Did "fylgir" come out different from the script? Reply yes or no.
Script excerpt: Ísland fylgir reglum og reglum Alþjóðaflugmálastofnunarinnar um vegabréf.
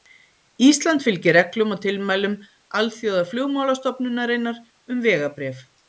no